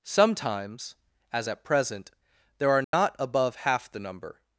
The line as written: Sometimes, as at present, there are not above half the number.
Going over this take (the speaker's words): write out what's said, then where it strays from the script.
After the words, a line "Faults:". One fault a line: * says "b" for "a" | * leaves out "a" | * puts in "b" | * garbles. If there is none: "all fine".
Sometimes, as at present, there are not above half the number.
Faults:
all fine